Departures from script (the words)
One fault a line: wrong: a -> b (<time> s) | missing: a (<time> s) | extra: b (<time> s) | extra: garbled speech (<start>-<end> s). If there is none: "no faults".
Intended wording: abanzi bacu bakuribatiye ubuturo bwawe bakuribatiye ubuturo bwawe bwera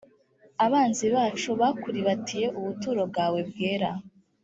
missing: bakuribatiye ubuturo bwawe (3.4 s)